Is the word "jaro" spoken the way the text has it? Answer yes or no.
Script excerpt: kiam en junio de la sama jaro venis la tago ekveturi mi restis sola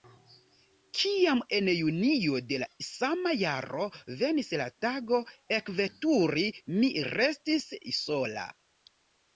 yes